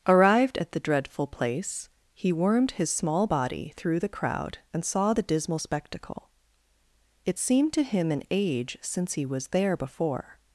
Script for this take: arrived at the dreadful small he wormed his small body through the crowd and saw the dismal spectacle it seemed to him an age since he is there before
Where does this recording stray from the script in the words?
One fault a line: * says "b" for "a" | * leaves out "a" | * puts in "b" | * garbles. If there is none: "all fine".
* says "place" for "small"
* says "was" for "is"